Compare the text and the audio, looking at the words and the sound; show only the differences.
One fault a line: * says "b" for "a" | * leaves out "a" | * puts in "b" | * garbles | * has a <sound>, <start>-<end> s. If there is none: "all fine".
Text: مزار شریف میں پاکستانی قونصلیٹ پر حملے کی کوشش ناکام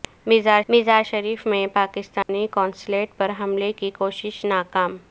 * puts in "مزار"
* has a dropout, 2.2-2.3 s